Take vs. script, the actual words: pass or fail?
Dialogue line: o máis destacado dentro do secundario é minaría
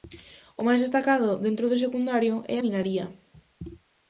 pass